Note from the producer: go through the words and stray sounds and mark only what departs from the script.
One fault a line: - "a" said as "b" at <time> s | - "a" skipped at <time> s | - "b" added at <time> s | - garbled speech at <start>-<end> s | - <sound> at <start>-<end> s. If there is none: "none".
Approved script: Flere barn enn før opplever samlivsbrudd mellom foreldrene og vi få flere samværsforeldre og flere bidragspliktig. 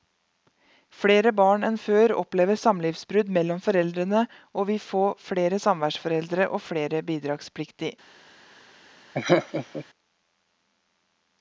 - laugh at 9.1-9.9 s